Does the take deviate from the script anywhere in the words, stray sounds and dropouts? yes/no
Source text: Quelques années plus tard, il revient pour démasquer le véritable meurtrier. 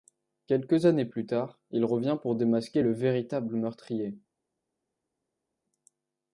no